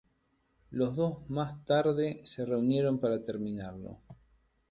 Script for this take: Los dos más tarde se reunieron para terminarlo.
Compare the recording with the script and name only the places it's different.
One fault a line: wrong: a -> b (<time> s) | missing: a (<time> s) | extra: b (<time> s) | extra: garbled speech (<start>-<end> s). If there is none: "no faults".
no faults